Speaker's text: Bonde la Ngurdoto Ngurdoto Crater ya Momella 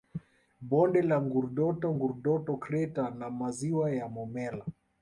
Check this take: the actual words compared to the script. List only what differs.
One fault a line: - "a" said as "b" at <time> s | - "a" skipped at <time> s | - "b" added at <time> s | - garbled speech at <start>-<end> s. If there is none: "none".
- "na maziwa" added at 3.2 s